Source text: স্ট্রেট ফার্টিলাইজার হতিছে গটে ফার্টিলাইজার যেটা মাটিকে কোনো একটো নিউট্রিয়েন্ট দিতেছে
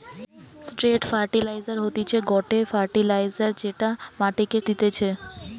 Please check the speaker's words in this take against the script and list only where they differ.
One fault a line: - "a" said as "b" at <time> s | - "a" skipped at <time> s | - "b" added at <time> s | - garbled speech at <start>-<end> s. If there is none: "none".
- "কোনো একটো নিউট্রিয়েন্ট" skipped at 4.6 s